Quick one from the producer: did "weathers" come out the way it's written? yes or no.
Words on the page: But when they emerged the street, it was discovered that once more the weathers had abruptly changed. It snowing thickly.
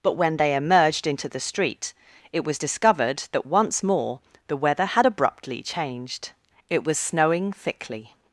no